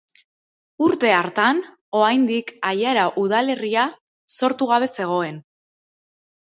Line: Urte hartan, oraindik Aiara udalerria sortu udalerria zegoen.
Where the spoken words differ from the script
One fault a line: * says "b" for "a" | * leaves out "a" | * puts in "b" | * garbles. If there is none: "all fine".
* says "gabe" for "udalerria"